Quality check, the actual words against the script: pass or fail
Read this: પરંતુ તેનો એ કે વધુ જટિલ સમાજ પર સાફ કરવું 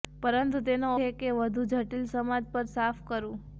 pass